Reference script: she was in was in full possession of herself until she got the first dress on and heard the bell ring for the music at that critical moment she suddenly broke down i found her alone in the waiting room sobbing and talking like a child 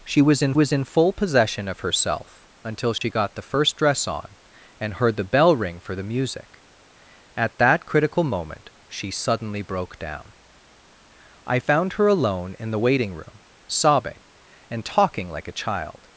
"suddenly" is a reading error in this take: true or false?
false